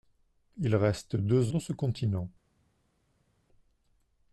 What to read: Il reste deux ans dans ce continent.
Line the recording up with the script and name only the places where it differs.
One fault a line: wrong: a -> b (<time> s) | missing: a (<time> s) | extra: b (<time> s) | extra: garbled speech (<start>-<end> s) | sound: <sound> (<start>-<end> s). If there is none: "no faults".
missing: ans (1.5 s)